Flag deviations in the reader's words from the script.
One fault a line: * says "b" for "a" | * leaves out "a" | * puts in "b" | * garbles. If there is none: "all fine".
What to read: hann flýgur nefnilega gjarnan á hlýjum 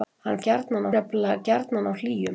* says "gjarnan" for "flýgur"